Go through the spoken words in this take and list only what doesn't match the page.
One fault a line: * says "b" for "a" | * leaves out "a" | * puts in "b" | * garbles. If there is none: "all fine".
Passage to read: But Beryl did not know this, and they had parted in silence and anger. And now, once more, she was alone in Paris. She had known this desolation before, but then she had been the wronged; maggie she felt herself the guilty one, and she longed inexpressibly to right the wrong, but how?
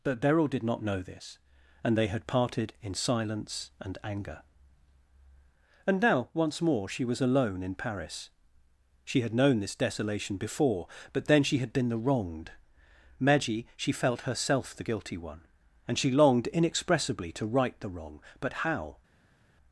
all fine